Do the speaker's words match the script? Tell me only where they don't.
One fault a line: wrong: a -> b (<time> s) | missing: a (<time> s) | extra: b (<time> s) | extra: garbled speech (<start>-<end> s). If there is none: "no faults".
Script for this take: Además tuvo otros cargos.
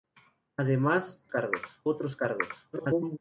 wrong: tuvo -> cargos (1.3 s)
extra: garbled speech (2.7-3.2 s)